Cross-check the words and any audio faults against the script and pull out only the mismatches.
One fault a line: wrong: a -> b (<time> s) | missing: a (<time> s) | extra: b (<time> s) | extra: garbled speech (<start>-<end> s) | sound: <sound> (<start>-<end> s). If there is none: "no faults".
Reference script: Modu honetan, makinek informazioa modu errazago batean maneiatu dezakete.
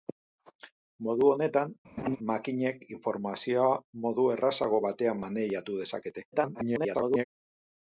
sound: laugh (2.0-2.2 s)
extra: garbled speech (6.3-7.2 s)